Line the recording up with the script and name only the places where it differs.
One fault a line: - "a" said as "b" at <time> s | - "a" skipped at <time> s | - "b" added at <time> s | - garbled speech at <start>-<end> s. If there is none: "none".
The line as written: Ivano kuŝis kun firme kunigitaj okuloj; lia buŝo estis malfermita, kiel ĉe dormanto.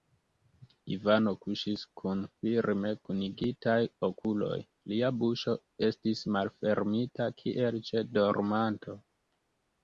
none